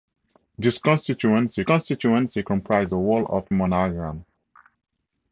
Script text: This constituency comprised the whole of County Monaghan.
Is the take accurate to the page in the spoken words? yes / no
no